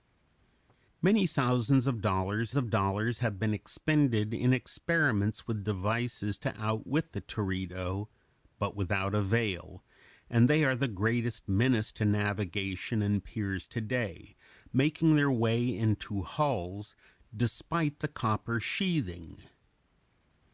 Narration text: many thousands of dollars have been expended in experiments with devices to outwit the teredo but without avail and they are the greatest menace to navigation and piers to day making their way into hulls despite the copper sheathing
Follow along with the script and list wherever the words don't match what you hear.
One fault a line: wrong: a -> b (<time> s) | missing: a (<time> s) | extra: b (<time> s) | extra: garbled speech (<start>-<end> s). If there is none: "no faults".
extra: of dollars (2.5 s)